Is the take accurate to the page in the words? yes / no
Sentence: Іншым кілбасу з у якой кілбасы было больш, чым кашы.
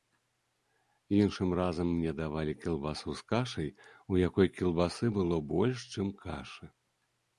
no